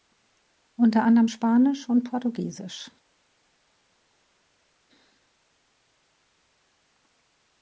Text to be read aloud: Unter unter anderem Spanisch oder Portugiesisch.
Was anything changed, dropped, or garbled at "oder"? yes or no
yes